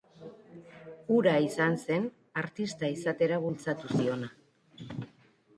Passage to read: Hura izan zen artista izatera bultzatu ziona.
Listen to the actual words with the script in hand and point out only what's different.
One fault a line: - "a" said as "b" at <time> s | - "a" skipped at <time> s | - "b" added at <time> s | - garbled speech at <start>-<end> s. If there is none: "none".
none